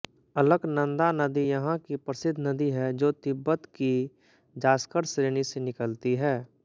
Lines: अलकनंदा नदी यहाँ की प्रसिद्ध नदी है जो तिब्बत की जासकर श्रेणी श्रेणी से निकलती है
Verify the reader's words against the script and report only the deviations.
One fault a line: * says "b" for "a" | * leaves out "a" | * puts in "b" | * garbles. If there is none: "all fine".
* leaves out "श्रेणी"